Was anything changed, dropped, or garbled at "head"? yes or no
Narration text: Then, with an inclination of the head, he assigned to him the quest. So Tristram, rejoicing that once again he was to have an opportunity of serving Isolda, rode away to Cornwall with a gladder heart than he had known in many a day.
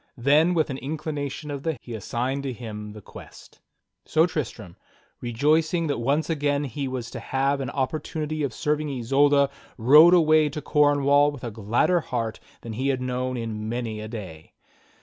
yes